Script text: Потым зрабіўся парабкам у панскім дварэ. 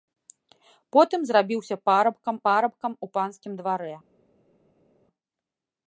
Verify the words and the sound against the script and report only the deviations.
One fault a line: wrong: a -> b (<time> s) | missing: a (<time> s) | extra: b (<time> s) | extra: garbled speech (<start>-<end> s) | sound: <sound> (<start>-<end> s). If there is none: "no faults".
extra: парабкам (2.5 s)